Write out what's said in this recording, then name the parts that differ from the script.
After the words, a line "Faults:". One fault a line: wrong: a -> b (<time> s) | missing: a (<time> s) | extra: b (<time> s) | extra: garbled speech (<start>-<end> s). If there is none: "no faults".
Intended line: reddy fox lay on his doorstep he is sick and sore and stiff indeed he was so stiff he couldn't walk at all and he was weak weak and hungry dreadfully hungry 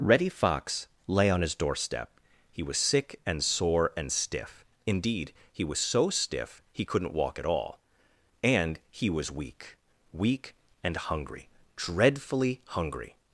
reddy fox lay on his doorstep he was sick and sore and stiff indeed he was so stiff he couldn't walk at all and he was weak weak and hungry dreadfully hungry
Faults:
wrong: is -> was (2.6 s)